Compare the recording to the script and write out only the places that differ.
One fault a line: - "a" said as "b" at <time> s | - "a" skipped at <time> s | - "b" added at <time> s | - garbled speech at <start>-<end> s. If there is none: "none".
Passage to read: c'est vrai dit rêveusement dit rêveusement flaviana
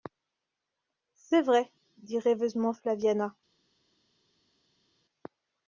- "dit rêveusement" skipped at 2.7 s